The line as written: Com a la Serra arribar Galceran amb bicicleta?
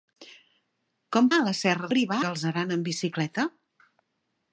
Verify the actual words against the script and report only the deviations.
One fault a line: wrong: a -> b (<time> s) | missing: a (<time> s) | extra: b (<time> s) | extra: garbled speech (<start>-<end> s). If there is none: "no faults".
no faults